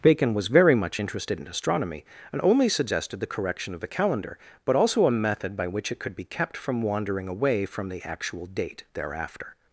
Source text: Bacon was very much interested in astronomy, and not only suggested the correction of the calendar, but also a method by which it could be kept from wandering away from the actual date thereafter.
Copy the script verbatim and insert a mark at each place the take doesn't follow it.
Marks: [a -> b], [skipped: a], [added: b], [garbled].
Bacon was very much interested in astronomy, and [skipped: not] only suggested the correction of the calendar, but also a method by which it could be kept from wandering away from the actual date thereafter.